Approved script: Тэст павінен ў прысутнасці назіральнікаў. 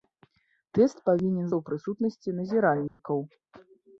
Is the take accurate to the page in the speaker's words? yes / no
yes